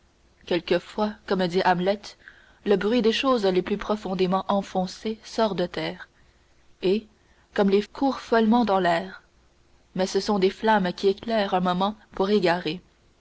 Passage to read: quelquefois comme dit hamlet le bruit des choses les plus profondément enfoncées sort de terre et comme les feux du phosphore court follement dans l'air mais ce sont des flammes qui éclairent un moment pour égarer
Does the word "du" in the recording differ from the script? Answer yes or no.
yes